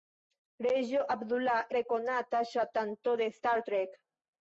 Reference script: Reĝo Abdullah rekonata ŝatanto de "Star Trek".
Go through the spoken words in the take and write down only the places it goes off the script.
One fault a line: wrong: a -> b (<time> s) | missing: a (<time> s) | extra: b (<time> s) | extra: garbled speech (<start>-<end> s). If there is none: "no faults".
no faults